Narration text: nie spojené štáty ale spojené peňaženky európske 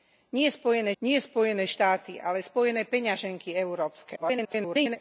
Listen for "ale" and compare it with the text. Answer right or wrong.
right